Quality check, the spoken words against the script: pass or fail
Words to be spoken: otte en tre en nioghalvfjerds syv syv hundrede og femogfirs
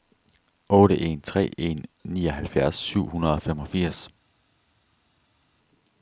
fail